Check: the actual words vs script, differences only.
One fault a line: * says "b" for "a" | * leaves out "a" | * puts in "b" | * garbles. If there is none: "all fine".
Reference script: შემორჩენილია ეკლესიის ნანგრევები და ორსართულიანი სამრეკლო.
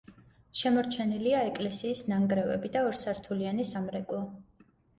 all fine